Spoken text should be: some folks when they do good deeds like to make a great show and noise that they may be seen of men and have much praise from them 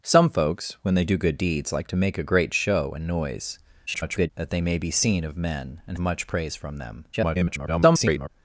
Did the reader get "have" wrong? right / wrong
wrong